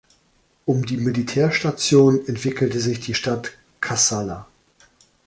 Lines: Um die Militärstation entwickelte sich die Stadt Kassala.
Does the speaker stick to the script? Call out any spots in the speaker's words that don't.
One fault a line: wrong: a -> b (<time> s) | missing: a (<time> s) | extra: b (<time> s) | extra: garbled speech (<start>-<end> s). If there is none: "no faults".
no faults